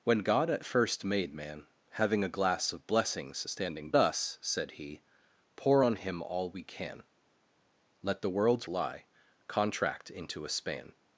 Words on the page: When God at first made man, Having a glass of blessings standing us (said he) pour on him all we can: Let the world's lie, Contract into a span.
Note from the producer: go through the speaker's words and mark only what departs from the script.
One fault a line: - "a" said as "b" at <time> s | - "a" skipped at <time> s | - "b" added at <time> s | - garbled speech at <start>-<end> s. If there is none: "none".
none